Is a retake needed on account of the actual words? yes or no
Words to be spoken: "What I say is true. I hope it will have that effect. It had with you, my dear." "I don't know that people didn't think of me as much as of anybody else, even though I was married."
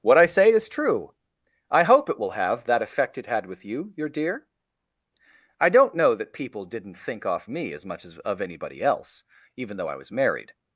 yes